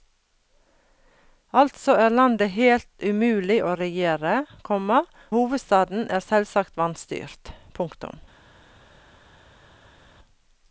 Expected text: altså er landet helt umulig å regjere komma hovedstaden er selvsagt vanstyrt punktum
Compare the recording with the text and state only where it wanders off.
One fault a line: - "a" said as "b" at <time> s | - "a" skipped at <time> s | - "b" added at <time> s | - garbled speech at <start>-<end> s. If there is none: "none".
none